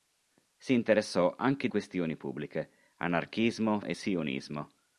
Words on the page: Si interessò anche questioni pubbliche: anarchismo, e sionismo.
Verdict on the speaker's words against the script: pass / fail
pass